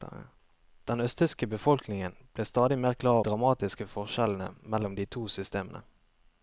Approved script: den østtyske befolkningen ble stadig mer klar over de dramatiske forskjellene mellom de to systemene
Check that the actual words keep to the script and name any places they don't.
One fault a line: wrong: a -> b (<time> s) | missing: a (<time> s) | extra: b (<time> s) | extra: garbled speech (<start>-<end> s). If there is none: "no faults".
missing: over de (3.2 s)